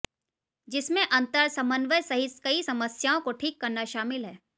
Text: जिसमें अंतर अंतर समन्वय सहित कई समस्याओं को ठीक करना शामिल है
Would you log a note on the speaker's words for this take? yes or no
yes